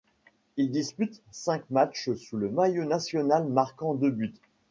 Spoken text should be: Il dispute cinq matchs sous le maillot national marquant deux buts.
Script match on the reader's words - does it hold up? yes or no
yes